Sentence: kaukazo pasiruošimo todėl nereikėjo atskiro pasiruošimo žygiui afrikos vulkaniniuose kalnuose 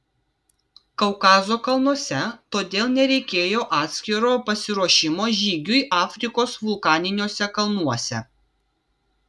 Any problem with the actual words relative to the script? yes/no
yes